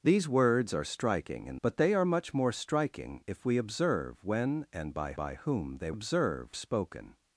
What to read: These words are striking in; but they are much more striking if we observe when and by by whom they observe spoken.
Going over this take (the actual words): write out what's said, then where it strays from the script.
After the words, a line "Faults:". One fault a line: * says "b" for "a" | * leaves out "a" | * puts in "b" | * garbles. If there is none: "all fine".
These words are striking in; but they are much more striking if we observe when and by by whom they observe spoken.
Faults:
all fine